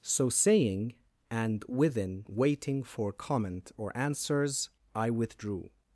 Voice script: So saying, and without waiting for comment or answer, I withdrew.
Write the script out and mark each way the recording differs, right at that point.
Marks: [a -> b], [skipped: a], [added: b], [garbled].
So saying, and [without -> within] waiting for comment or [answer, -> answers] I withdrew.